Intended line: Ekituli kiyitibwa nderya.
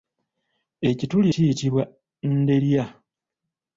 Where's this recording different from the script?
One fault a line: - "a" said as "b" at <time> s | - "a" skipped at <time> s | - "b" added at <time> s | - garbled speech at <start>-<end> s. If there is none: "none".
none